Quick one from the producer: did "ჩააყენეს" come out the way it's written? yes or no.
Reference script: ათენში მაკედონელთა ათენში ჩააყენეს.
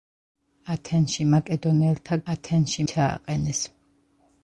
yes